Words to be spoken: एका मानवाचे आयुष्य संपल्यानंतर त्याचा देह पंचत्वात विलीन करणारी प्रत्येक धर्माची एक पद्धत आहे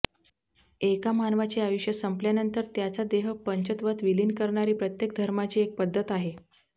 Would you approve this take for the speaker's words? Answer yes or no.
yes